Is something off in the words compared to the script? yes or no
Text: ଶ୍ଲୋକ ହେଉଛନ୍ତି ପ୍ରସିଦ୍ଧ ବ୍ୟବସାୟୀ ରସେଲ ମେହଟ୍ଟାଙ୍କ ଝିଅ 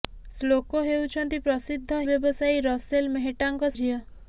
no